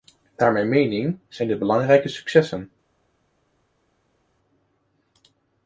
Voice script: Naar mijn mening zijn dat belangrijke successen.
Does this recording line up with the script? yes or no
no